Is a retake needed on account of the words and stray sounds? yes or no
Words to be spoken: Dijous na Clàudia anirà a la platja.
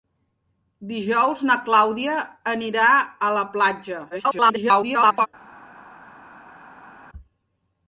yes